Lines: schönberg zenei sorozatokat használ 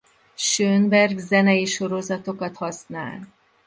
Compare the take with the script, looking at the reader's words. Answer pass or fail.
pass